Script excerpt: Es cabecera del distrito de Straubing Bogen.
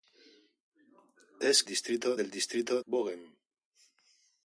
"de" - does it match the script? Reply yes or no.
no